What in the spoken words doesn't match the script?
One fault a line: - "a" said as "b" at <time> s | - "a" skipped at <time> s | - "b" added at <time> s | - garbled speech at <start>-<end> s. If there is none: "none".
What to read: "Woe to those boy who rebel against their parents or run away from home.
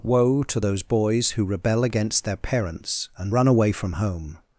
- "boy" said as "boys" at 0.8 s
- "or" said as "and" at 3.2 s